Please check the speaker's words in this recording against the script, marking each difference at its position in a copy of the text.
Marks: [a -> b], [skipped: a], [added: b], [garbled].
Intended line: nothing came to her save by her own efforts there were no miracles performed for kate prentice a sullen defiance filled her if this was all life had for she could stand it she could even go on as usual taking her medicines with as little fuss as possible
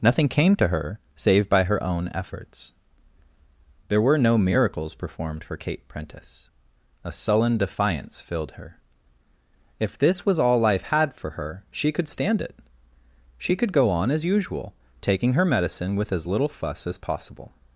nothing came to her save by her own efforts there were no miracles performed for kate prentice a sullen defiance filled her if this was all life had for [added: her] she could stand it she could [skipped: even] go on as usual taking her [medicines -> medicine] with as little fuss as possible